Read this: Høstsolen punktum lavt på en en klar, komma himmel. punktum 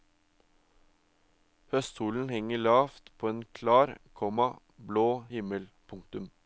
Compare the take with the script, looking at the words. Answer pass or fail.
fail